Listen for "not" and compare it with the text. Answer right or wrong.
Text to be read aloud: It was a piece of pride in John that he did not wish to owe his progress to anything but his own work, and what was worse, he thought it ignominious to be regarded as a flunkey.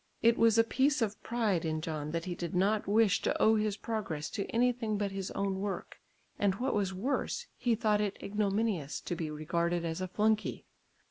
right